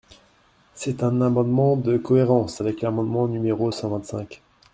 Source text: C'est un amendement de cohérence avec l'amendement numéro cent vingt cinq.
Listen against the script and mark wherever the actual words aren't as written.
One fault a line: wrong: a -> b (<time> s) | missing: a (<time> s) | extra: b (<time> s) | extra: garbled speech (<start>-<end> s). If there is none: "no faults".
no faults